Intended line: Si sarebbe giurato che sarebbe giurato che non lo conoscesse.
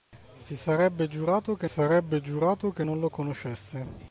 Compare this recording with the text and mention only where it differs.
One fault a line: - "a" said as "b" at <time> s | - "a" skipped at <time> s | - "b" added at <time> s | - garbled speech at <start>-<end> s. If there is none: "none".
none